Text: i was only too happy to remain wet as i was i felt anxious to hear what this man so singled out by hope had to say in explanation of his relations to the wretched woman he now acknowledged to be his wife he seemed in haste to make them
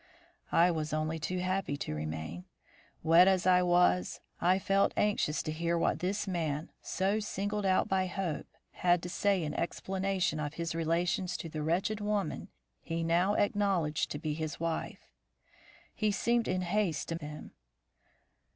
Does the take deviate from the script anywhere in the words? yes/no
yes